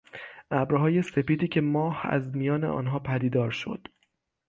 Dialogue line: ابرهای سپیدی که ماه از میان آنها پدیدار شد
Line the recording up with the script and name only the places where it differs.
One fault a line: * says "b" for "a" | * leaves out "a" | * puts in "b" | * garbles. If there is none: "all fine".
all fine